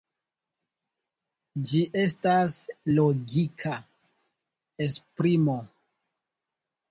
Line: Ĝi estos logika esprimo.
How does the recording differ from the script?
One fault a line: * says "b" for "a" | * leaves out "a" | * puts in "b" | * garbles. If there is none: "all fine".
* says "estas" for "estos"